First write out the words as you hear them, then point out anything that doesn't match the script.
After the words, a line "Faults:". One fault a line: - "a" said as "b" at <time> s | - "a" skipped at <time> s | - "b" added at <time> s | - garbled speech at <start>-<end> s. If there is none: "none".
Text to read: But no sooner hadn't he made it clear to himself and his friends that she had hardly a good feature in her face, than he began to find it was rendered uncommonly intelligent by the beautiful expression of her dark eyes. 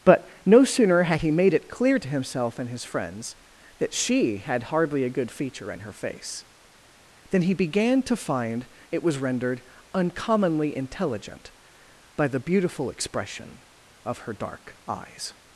But no sooner had he made it clear to himself and his friends that she had hardly a good feature in her face, than he began to find it was rendered uncommonly intelligent by the beautiful expression of her dark eyes.
Faults:
- "hadn't" said as "had" at 1.0 s